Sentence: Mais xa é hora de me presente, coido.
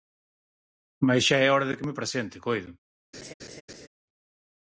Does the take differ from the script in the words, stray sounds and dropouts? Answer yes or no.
yes